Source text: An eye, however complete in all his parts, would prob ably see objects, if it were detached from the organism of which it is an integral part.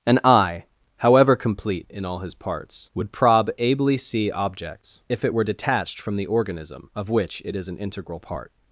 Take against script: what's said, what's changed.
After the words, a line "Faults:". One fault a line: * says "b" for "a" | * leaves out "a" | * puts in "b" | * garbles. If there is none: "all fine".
An eye, however complete in all his parts, would prob ably see objects, if it were detached from the organism of which it is an integral part.
Faults:
all fine